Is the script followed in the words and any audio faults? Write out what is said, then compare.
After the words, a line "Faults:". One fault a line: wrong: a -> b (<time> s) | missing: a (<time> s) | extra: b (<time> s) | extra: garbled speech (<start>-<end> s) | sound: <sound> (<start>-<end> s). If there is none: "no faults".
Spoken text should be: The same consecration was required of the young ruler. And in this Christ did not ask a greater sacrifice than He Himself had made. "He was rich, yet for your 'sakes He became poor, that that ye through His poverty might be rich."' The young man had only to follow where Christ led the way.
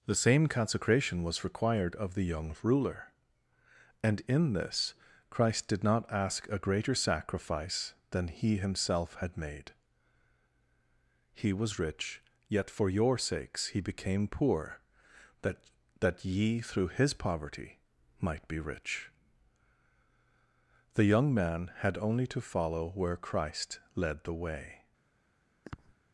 The same consecration was required of the young ruler. And in this Christ did not ask a greater sacrifice than He Himself had made. "He was rich, yet for your 'sakes He became poor, that that ye through His poverty might be rich."' The young man had only to follow where Christ led the way.
Faults:
sound: sniff (25.6-25.9 s)